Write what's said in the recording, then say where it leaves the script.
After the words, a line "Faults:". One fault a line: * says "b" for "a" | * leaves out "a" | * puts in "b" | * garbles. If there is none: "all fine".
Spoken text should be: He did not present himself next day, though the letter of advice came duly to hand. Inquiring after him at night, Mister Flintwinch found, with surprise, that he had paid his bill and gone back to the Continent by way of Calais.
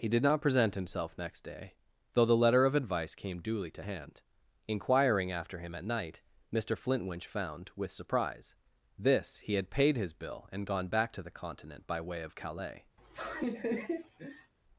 He did not present himself next day, though the letter of advice came duly to hand. Inquiring after him at night, Mister Flintwinch found, with surprise, this he had paid his bill and gone back to the Continent by way of Calais.
Faults:
* says "this" for "that"